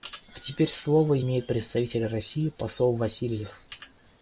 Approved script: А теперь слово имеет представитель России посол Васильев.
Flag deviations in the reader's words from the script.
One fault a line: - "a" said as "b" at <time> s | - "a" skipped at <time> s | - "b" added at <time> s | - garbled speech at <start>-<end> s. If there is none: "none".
none